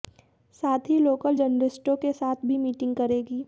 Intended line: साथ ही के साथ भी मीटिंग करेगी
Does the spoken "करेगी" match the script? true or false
true